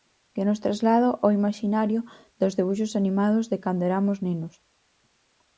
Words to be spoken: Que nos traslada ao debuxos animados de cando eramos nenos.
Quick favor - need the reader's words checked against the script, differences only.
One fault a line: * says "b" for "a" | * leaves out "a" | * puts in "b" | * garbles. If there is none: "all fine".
* puts in "imaxinario dos"